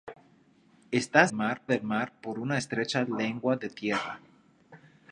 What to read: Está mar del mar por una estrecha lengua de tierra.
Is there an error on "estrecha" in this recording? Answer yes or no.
no